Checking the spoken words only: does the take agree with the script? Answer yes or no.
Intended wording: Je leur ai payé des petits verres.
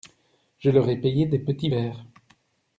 yes